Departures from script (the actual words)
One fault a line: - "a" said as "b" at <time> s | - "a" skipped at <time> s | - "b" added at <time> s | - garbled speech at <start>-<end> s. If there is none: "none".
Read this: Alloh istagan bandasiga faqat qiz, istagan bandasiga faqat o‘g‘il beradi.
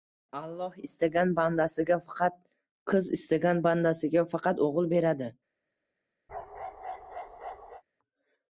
none